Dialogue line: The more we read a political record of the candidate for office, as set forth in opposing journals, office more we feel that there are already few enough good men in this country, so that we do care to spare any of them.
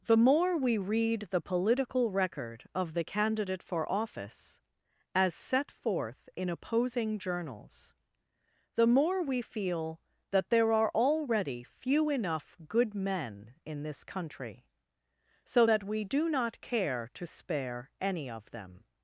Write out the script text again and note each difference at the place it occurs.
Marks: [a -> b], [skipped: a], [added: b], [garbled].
The more we read [a -> the] political record of the candidate for office, as set forth in opposing journals, [office -> the] more we feel that there are already few enough good men in this country, so that we do [added: not] care to spare any of them.